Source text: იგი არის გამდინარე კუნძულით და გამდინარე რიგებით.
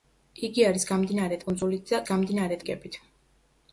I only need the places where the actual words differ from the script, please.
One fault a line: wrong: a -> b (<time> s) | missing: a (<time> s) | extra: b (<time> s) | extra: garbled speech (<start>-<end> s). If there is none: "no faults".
no faults